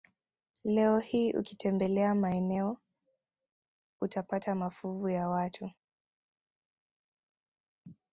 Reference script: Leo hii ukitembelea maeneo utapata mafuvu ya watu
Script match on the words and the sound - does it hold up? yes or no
yes